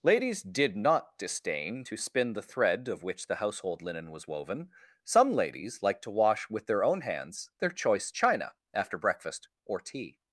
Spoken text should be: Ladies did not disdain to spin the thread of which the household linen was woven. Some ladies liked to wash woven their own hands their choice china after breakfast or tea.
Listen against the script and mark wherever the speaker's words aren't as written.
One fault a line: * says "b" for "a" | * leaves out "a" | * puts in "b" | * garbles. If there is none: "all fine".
* says "with" for "woven"